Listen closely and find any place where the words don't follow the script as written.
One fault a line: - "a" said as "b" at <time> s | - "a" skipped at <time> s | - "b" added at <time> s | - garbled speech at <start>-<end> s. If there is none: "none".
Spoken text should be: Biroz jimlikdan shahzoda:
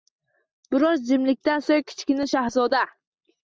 - "so‘ng Kichkina" added at 1.7 s